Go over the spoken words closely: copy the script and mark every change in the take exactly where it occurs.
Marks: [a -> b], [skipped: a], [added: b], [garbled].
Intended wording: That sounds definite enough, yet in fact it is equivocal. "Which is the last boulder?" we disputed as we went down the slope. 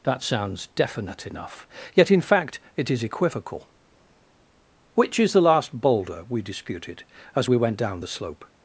That sounds definite enough, yet in fact it is equivocal. "Which is the last boulder?" we disputed as we went down the slope.